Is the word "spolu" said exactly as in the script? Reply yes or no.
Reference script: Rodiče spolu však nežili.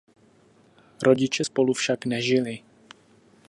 yes